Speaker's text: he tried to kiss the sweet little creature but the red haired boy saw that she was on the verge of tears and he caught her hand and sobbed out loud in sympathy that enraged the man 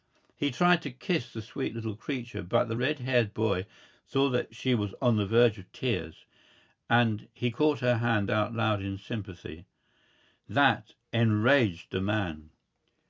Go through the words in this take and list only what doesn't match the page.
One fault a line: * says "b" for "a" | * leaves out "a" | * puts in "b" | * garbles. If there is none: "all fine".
* leaves out "and sobbed"